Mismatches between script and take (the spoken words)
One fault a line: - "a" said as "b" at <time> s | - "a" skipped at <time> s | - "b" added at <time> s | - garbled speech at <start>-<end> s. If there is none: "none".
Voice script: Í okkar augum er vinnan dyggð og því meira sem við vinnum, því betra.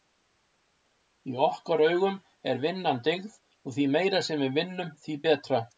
none